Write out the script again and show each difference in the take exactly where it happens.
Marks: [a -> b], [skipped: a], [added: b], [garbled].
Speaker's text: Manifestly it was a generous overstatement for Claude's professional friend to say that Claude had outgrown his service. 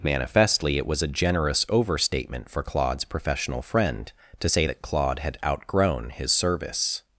Manifestly it was a generous overstatement for Claude's professional friend to say that Claude had outgrown his service.